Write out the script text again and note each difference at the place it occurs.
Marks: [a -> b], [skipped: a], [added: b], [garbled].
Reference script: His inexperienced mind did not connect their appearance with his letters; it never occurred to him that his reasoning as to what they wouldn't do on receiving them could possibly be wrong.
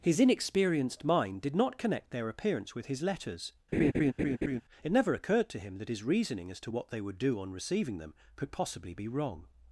His inexperienced mind did not connect their appearance with his letters; it never occurred to him that his reasoning as to what they [wouldn't -> would] do on receiving them could possibly be wrong.